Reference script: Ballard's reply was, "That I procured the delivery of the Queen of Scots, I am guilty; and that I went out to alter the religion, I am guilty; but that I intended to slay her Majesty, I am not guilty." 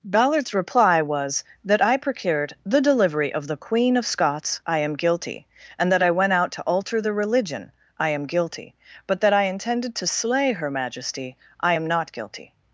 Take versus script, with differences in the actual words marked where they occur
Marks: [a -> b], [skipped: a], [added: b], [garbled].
Ballard's reply was, "That I procured the delivery of the Queen of Scots, I am guilty; and that I went out to alter the religion, I am guilty; but that I intended to slay her Majesty, I am not guilty."